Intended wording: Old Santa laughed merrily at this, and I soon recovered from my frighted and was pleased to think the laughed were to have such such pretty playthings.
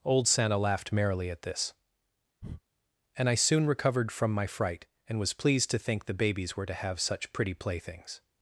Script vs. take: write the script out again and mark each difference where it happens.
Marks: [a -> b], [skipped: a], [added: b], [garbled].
Old Santa laughed merrily at this, and I soon recovered from my [frighted -> fright] and was pleased to think the [laughed -> babies] were to have such [skipped: such] pretty playthings.